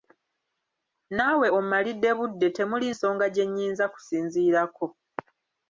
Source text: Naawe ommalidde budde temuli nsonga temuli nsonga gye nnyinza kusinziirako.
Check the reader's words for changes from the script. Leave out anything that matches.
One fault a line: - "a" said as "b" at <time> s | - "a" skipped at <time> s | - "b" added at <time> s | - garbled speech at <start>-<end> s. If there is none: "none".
- "temuli nsonga" skipped at 3.3 s